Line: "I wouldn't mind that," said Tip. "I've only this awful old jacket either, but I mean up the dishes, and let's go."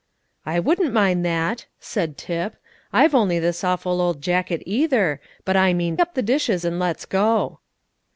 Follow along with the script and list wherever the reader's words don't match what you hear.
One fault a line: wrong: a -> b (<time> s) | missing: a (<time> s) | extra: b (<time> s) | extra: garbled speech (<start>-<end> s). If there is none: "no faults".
no faults